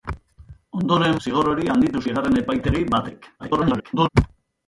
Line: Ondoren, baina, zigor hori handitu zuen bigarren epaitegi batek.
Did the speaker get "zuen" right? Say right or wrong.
wrong